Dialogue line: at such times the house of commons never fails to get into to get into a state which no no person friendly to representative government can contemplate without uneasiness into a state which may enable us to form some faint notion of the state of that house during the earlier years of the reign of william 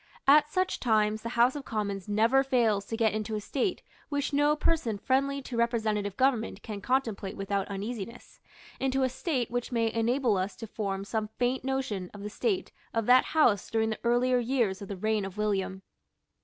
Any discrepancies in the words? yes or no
yes